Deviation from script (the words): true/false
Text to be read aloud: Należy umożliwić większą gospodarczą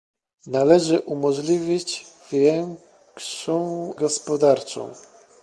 false